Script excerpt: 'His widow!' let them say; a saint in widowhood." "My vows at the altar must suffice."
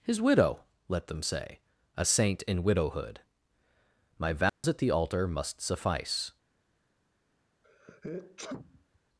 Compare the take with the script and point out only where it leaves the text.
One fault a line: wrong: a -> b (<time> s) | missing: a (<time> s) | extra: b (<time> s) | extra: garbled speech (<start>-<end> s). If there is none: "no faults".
no faults